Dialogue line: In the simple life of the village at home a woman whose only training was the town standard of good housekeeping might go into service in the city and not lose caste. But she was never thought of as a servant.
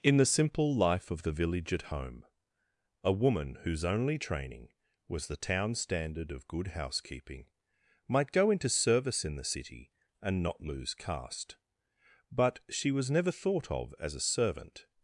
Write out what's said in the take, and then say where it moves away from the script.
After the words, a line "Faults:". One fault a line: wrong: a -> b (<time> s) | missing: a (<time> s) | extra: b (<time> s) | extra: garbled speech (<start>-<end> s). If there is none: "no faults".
In the simple life of the village at home a woman whose only training was the town standard of good housekeeping might go into service in the city and not lose caste. But she was never thought of as a servant.
Faults:
no faults